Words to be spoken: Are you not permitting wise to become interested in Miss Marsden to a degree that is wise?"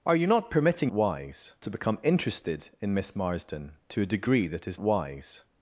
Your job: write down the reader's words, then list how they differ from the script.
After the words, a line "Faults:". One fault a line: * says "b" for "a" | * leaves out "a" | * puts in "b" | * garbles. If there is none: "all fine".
Are you not permitting wise to become interested in Miss Marsden to a degree that is wise?"
Faults:
all fine